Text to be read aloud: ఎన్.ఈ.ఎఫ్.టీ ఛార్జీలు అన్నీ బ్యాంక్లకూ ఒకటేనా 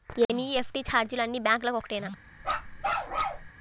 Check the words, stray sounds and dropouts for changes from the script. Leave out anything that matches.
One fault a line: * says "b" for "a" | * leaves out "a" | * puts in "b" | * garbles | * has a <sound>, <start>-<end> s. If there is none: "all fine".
* has a bark, 2.4-3.5 s